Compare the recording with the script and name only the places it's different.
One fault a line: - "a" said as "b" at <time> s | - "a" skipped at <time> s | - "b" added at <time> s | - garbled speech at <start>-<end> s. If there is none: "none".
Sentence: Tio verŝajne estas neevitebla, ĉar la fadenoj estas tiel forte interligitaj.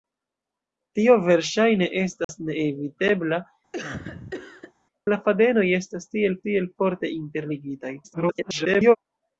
- "ĉar" skipped at 3.4 s
- "tiel" added at 6.5 s
- garbled speech at 8.0-9.0 s